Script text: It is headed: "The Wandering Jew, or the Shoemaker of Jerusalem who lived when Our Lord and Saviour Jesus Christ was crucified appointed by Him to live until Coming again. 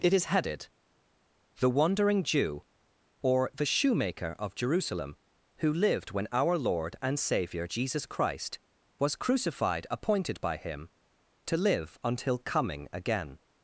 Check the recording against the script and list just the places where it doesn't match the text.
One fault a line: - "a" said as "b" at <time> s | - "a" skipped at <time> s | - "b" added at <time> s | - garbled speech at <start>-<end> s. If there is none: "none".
none